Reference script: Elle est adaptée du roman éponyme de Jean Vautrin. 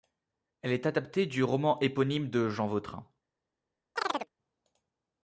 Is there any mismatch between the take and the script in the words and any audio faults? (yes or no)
yes